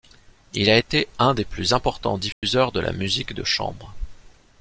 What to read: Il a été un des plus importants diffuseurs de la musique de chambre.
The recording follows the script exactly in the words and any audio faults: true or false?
false